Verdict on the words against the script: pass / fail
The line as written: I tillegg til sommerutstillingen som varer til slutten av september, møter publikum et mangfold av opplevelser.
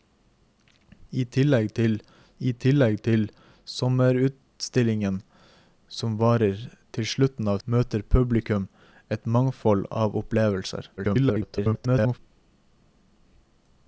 fail